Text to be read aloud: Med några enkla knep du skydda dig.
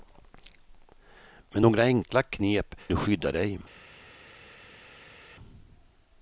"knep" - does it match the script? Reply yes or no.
yes